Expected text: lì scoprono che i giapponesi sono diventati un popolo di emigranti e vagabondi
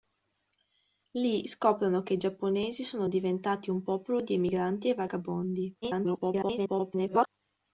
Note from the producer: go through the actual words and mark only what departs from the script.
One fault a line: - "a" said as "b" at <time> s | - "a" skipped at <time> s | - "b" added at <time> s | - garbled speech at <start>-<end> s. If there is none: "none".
- garbled speech at 5.8-7.3 s